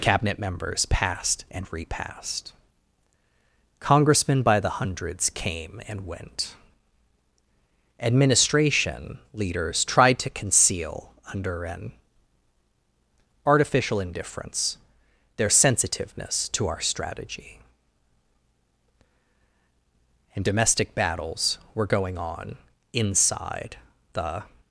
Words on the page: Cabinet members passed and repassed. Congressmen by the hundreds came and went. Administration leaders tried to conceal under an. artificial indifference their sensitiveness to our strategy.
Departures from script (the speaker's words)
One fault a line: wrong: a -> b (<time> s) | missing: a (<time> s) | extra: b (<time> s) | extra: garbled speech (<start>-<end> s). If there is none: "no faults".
extra: And domestic battles were going on inside the (20.4 s)